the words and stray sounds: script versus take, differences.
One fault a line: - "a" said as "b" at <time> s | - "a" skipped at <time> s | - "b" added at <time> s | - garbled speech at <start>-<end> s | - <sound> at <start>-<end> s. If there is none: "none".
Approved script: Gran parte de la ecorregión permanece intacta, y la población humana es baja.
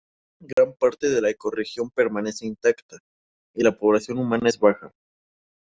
- dropout at 0.5-0.6 s